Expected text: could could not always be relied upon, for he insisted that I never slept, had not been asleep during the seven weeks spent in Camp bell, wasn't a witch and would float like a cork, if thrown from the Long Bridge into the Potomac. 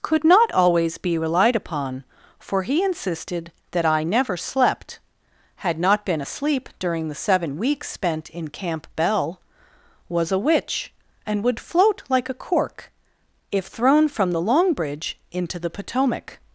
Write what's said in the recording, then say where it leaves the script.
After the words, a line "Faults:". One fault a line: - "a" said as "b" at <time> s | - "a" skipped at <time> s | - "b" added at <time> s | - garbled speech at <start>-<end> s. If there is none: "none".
could not always be relied upon, for he insisted that I never slept, had not been asleep during the seven weeks spent in Camp bell, was a witch and would float like a cork, if thrown from the Long Bridge into the Potomac.
Faults:
- "could" skipped at 0.2 s
- "wasn't" said as "was" at 10.1 s